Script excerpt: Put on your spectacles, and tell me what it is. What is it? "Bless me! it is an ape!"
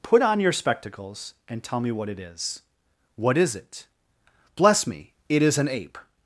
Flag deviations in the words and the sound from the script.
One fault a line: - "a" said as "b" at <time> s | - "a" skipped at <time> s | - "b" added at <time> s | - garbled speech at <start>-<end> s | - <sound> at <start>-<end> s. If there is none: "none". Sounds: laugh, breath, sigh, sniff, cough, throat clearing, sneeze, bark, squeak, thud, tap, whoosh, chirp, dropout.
none